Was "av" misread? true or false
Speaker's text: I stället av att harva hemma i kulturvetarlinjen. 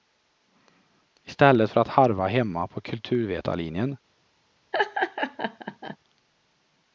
true